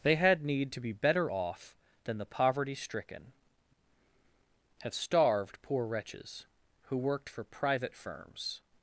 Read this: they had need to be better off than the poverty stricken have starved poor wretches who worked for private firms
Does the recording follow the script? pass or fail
pass